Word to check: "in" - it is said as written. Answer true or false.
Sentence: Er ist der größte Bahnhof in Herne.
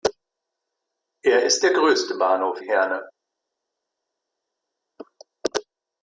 false